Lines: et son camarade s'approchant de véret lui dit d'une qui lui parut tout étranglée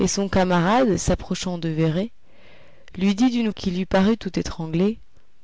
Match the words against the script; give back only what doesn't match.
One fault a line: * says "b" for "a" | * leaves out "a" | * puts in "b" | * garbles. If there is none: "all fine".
all fine